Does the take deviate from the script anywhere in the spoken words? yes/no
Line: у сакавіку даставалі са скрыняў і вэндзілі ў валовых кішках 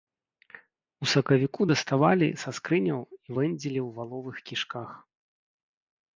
no